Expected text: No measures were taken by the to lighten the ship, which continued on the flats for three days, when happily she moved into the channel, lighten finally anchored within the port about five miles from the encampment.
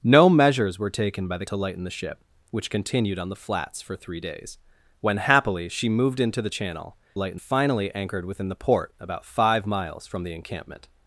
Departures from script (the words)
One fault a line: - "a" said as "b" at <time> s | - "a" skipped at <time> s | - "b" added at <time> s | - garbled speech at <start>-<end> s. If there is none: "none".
none